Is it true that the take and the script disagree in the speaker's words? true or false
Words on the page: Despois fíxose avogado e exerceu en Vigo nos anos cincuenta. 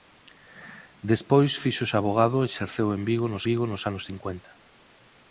true